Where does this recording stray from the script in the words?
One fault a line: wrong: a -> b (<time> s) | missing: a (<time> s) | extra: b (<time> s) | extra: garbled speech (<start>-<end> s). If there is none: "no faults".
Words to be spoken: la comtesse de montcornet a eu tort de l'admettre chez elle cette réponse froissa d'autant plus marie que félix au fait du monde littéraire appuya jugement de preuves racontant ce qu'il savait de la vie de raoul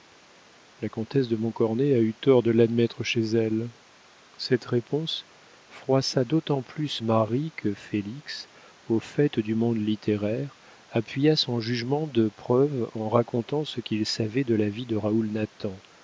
extra: son (11.4 s)
extra: en (12.9 s)